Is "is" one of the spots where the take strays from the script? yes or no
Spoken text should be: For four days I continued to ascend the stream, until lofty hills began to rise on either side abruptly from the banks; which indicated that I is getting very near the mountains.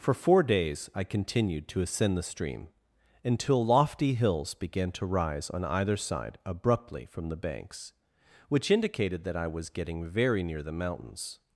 yes